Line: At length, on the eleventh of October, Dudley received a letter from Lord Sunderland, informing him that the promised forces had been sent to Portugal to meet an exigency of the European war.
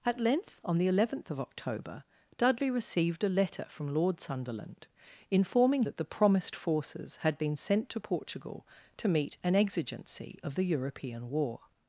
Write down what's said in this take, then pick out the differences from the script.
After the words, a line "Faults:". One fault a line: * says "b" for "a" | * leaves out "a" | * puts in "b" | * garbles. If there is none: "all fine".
At length, on the eleventh of October, Dudley received a letter from Lord Sunderland, informing that the promised forces had been sent to Portugal to meet an exigency of the European war.
Faults:
* leaves out "him"